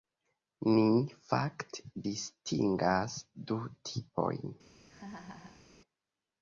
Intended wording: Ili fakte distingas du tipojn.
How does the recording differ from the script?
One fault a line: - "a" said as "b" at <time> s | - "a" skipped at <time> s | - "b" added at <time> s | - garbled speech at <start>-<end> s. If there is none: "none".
- "Ili" said as "Ni" at 0.7 s